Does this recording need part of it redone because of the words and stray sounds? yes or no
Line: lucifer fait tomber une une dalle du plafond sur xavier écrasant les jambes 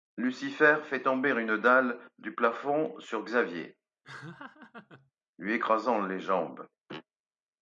yes